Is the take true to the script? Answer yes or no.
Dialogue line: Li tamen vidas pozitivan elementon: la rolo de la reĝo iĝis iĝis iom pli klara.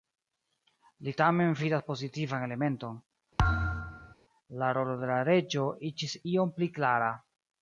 no